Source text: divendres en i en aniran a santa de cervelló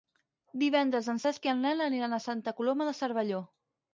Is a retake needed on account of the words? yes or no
yes